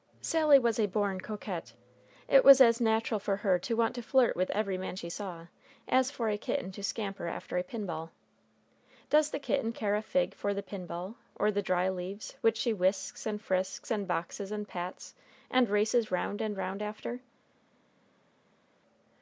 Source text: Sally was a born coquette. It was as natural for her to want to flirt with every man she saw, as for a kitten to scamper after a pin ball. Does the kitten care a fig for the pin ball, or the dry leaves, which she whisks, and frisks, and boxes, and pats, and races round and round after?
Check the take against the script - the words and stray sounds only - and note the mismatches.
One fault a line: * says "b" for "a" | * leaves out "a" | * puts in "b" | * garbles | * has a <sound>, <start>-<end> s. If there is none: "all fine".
all fine